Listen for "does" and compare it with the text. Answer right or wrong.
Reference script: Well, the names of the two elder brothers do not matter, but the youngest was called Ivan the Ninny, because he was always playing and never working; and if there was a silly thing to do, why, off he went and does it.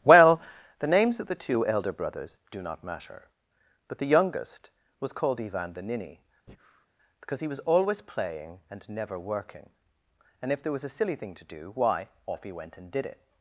wrong